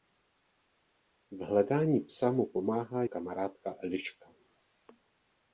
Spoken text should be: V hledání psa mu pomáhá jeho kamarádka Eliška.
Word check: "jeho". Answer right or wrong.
wrong